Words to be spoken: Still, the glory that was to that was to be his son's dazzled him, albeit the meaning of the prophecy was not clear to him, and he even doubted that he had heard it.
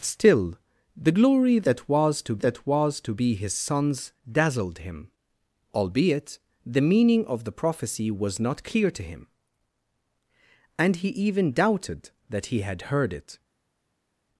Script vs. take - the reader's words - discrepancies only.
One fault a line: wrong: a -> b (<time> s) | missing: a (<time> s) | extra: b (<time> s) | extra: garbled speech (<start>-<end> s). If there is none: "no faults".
no faults